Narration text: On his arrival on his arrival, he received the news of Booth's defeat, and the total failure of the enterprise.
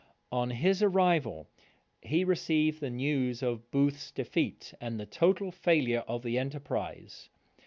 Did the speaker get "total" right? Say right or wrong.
right